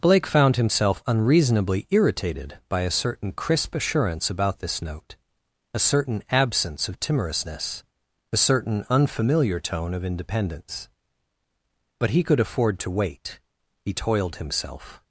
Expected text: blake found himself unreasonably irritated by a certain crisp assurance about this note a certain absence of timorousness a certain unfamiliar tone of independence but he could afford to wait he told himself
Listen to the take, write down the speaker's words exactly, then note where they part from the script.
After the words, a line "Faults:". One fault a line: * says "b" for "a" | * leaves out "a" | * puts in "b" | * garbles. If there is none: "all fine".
blake found himself unreasonably irritated by a certain crisp assurance about this note a certain absence of timorousness a certain unfamiliar tone of independence but he could afford to wait he toiled himself
Faults:
* says "toiled" for "told"